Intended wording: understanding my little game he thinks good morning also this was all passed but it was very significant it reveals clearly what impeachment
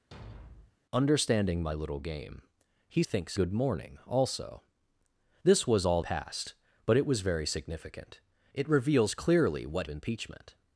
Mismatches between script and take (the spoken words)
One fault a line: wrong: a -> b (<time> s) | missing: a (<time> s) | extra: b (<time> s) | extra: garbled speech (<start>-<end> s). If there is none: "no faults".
no faults